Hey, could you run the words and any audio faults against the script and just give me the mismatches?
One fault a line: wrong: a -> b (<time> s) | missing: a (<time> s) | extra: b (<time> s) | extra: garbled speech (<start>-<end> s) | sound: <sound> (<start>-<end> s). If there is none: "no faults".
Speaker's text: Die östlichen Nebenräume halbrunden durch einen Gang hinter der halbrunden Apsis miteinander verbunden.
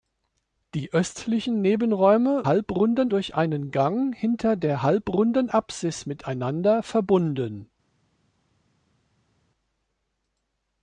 no faults